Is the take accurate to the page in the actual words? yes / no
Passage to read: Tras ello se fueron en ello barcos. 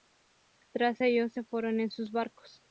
no